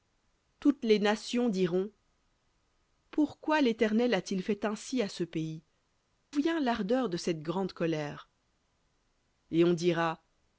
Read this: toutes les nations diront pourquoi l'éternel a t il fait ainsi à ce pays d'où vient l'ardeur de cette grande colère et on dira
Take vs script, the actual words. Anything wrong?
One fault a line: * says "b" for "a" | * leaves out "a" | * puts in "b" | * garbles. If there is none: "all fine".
* leaves out "d'où"